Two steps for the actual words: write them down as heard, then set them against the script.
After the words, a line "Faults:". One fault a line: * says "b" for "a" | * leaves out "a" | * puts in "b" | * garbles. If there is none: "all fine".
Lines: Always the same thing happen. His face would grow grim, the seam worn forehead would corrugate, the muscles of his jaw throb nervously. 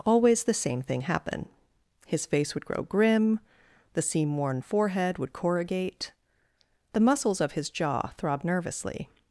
Always the same thing happen. His face would grow grim, the seam worn forehead would corrugate, the muscles of his jaw throb nervously.
Faults:
all fine